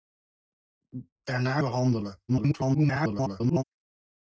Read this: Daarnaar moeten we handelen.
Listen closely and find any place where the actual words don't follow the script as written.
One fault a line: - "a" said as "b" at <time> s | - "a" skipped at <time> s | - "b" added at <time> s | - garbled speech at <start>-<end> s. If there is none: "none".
- "moeten" skipped at 1.6 s
- garbled speech at 2.3-3.6 s